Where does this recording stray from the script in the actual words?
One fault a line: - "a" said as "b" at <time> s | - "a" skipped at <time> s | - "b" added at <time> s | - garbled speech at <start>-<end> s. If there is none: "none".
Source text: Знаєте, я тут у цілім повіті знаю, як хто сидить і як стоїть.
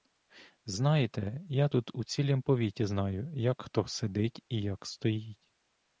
none